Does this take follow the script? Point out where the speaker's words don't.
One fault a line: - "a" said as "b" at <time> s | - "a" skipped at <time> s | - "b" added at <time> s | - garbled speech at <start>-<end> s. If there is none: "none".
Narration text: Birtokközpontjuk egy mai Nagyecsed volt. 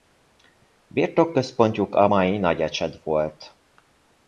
- "egy" said as "a" at 1.9 s